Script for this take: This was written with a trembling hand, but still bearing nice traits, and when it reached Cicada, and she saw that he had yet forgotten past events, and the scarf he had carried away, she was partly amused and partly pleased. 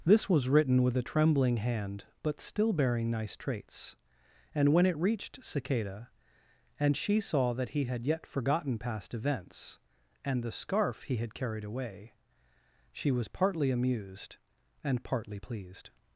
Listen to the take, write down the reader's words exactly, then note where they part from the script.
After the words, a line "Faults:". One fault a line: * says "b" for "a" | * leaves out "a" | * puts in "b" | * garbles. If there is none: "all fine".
This was written with a trembling hand, but still bearing nice traits, and when it reached Cicada, and she saw that he had yet forgotten past events, and the scarf he had carried away, she was partly amused and partly pleased.
Faults:
all fine